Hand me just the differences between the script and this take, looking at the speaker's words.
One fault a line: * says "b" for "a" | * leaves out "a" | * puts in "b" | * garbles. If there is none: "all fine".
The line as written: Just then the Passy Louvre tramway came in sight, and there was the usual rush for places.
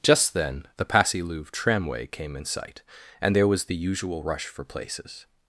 all fine